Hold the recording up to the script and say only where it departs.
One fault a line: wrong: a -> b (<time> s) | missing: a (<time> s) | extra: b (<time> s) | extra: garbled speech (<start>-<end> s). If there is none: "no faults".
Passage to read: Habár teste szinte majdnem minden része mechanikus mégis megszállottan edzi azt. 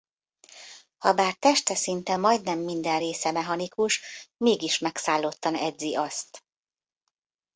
no faults